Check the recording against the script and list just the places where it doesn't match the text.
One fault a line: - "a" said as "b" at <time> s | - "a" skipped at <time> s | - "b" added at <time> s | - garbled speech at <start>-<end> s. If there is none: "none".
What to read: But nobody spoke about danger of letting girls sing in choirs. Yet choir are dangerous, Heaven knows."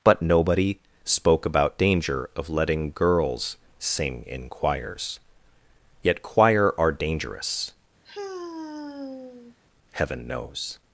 none